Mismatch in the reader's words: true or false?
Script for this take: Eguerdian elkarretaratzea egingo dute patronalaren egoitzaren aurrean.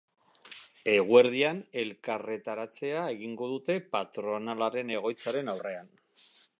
false